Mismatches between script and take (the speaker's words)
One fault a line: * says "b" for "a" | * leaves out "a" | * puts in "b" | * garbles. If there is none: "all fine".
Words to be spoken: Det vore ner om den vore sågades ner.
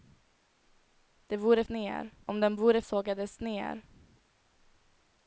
all fine